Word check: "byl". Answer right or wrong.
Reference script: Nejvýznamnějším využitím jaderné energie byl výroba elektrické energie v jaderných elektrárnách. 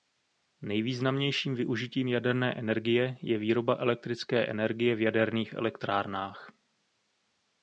wrong